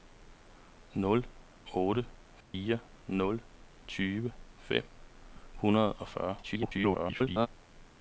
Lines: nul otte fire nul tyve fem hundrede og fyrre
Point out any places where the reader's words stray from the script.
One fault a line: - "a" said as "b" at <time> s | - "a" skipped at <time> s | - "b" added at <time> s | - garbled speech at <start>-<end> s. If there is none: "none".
- garbled speech at 6.4-7.5 s